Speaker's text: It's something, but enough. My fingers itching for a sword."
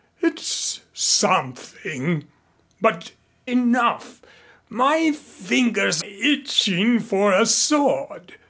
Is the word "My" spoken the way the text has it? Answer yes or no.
yes